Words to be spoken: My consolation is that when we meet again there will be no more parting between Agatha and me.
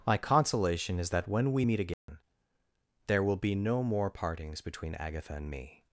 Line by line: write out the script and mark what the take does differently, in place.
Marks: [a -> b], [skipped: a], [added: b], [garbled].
My consolation is that when we meet again there will be no more [parting -> partings] between Agatha and me.